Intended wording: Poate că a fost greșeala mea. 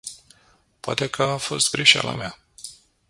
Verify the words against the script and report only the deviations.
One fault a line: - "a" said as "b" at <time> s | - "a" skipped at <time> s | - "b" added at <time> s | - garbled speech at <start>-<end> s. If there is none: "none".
none